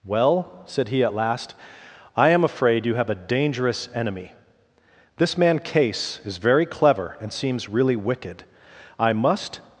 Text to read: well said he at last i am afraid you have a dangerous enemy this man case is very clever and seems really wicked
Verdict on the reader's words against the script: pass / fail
fail